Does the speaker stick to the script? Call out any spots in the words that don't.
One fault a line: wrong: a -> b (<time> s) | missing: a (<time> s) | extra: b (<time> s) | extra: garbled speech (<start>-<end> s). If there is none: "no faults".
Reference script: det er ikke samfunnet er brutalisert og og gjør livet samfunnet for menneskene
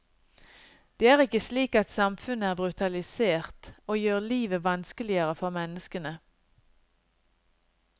extra: slik at (1.4 s)
missing: og (4.0 s)
wrong: samfunnet -> vanskeligere (4.6 s)